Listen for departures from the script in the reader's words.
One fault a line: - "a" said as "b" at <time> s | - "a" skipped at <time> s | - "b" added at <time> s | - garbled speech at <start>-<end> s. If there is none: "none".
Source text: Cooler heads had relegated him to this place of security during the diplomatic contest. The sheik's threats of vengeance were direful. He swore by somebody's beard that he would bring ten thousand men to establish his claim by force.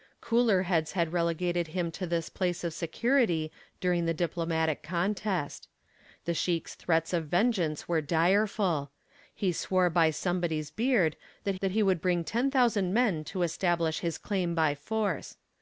- "that" added at 11.6 s